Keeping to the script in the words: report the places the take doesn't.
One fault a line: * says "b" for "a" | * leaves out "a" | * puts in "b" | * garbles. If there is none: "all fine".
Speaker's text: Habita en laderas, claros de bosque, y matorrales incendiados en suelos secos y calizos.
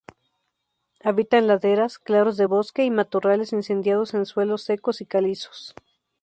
all fine